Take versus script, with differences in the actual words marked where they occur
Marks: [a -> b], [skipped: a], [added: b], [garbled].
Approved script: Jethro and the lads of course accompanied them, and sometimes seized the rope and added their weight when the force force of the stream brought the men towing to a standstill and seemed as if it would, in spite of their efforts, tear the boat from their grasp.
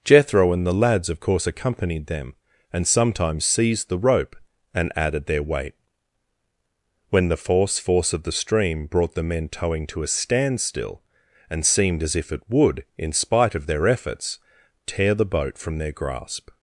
Jethro and the lads of course accompanied them, and sometimes seized the rope and added their weight when the force force of the stream brought the men towing to a standstill and seemed as if it would, in spite of their efforts, tear the boat from their grasp.